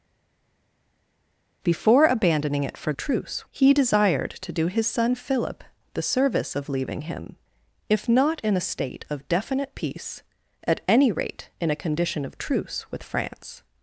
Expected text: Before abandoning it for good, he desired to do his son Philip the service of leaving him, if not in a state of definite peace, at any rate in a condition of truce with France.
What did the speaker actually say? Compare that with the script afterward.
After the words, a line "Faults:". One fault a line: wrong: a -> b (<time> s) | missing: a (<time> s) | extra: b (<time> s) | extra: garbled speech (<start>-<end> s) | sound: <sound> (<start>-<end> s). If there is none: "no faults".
Before abandoning it for truce, he desired to do his son Philip the service of leaving him, if not in a state of definite peace, at any rate in a condition of truce with France.
Faults:
wrong: good -> truce (3.0 s)